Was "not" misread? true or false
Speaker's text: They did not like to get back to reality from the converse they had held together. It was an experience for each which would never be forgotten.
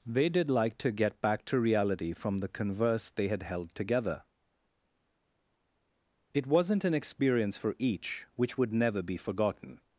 true